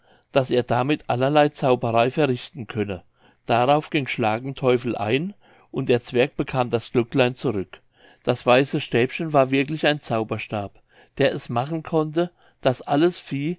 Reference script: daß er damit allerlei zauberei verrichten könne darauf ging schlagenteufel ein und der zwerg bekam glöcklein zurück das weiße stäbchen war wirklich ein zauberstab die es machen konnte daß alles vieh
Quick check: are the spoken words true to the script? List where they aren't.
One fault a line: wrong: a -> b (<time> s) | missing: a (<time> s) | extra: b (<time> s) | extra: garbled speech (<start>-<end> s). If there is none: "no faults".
extra: das (6.7 s)
wrong: die -> der (11.2 s)